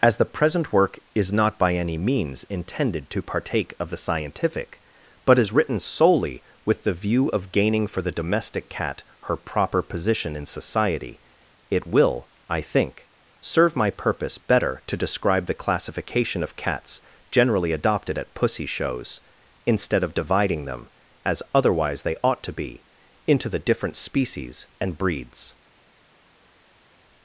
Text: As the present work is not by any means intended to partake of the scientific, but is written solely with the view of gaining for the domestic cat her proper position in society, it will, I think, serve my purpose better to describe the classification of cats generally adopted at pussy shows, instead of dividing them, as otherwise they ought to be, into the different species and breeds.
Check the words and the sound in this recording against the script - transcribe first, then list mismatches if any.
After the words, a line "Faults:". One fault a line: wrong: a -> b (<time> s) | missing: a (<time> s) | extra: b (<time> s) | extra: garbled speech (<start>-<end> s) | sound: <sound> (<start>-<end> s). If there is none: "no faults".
As the present work is not by any means intended to partake of the scientific, but is written solely with the view of gaining for the domestic cat her proper position in society, it will, I think, serve my purpose better to describe the classification of cats generally adopted at pussy shows, instead of dividing them, as otherwise they ought to be, into the different species and breeds.
Faults:
no faults